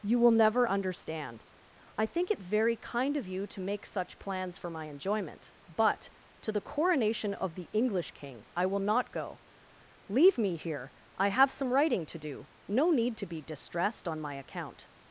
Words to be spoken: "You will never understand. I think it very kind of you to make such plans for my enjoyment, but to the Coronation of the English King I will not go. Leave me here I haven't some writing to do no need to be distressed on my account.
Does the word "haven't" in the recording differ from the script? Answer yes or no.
yes